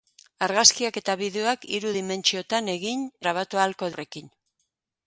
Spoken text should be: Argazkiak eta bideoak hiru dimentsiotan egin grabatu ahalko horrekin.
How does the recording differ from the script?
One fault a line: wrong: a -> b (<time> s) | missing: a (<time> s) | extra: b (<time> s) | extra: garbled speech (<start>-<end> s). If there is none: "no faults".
no faults